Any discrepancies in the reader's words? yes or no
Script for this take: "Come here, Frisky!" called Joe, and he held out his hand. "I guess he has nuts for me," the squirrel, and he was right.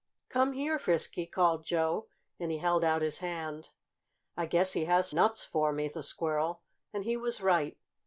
no